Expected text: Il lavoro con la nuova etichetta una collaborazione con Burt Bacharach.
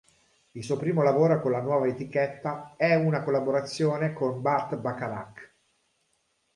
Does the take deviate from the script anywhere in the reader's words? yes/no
yes